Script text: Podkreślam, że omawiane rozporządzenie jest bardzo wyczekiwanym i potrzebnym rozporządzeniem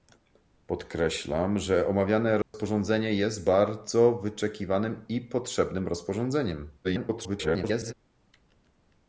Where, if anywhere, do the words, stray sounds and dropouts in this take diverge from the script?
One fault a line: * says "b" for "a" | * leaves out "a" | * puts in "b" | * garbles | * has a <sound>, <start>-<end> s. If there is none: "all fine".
* has a dropout, 2.4-2.5 s
* garbles